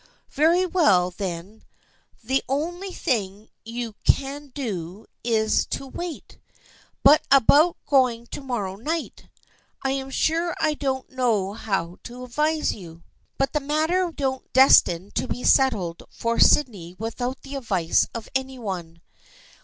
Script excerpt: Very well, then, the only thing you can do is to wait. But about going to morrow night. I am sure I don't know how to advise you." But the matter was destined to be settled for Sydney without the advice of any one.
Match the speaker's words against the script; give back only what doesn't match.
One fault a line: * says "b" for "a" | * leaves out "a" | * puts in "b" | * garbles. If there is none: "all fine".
* says "don't" for "was"